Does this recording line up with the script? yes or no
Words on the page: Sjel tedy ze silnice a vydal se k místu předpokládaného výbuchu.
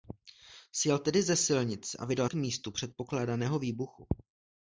no